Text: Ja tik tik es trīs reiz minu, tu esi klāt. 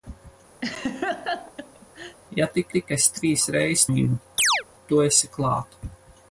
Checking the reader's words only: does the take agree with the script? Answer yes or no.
yes